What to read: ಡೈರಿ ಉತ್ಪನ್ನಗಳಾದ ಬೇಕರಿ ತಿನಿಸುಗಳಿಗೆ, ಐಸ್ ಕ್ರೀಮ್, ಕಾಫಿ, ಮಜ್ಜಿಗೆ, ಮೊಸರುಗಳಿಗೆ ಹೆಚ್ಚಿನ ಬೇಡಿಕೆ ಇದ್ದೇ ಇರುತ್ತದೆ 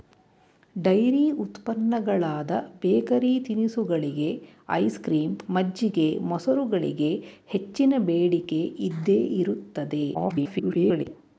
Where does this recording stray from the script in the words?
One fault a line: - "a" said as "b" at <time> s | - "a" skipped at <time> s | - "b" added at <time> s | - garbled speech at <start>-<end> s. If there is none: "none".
- "ಕಾಫಿ" skipped at 5.3 s
- garbled speech at 10.1-11.1 s